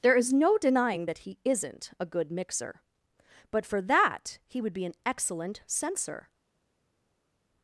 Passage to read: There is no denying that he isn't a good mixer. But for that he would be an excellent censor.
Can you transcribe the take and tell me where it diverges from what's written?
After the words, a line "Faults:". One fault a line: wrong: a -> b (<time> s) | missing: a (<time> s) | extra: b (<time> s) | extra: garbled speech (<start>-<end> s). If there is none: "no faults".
There is no denying that he isn't a good mixer. But for that he would be an excellent censor.
Faults:
no faults